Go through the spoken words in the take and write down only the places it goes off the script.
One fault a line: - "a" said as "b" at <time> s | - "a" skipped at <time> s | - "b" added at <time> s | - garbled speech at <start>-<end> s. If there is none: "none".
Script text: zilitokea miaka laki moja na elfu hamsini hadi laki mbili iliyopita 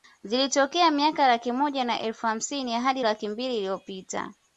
none